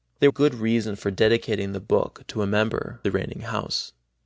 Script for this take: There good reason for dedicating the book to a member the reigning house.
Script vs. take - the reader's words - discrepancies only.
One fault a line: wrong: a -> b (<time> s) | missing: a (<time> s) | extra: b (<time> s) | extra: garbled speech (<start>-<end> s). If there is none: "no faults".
no faults